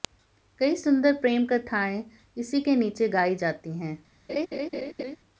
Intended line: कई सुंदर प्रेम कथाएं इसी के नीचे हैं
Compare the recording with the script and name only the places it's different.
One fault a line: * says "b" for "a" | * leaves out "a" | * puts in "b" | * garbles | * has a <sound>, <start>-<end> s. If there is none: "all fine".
* puts in "गाई जाती"
* has a laugh, 4.3-5.2 s